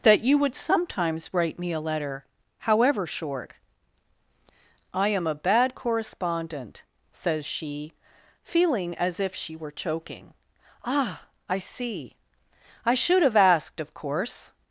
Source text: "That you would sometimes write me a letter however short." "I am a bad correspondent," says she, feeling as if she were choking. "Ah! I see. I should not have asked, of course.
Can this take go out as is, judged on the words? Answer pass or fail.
fail